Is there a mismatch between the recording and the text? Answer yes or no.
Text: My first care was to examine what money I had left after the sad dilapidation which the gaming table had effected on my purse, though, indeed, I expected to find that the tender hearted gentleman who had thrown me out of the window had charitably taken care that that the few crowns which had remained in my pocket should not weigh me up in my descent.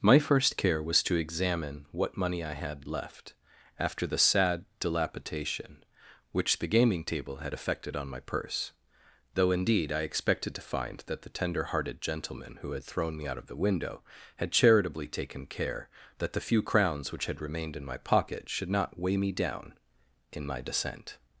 yes